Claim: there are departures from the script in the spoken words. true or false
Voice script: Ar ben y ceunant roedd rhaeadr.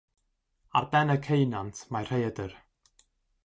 true